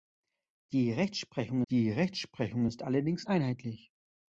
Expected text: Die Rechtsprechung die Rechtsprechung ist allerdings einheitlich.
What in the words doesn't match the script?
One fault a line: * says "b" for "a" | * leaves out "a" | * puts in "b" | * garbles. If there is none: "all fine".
all fine